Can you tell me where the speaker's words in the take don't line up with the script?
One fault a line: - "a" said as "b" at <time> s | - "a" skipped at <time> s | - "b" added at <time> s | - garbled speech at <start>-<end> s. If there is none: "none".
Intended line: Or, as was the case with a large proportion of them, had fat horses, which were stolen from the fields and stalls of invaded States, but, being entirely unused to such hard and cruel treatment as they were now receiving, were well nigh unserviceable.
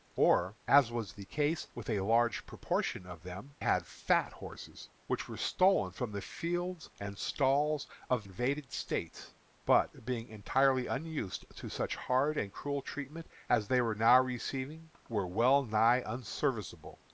none